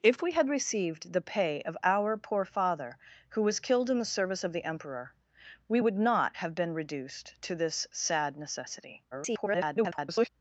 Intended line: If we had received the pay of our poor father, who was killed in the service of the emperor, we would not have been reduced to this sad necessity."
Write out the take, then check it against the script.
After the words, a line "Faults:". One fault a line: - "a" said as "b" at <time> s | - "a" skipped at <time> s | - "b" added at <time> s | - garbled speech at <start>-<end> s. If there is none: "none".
If we had received the pay of our poor father, who was killed in the service of the emperor, we would not have been reduced to this sad necessity." [garbled]
Faults:
- garbled speech at 9.1-10.3 s